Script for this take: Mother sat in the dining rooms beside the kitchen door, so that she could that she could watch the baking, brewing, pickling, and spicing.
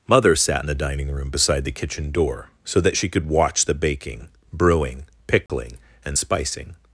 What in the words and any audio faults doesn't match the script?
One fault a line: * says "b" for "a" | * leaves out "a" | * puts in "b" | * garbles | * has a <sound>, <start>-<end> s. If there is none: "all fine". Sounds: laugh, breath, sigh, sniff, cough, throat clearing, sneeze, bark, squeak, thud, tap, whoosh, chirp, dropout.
* says "room" for "rooms"
* leaves out "that she could"
* has a dropout, 5.5-5.5 s